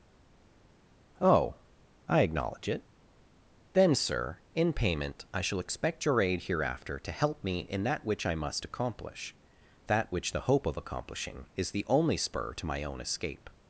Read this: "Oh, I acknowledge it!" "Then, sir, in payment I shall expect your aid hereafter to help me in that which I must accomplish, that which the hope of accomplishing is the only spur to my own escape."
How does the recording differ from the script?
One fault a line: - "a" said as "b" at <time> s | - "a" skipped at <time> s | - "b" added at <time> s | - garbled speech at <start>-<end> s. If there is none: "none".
none